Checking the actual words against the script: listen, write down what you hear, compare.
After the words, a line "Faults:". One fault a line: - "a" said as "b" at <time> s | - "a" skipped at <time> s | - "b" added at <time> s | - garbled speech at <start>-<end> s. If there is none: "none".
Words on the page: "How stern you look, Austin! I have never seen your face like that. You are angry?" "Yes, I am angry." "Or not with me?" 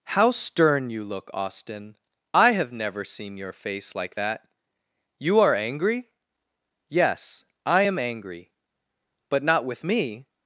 "How stern you look, Austin! I have never seen your face like that. You are angry?" "Yes, I am angry." "But not with me?"
Faults:
- "Or" said as "But" at 9.3 s